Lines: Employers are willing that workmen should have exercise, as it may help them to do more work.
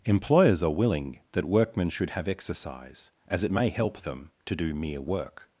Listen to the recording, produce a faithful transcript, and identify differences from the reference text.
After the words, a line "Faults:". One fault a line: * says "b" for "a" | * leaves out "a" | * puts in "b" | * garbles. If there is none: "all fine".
Employers are willing that workmen should have exercise, as it may help them to do mere work.
Faults:
* says "mere" for "more"